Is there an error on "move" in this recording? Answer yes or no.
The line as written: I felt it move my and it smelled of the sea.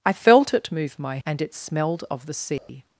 no